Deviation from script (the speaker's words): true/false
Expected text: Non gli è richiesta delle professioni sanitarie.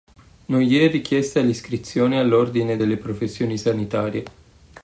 true